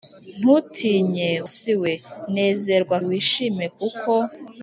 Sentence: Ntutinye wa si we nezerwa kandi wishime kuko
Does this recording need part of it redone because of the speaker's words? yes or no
yes